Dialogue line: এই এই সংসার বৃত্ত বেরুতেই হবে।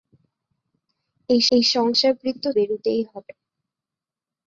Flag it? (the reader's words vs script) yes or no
no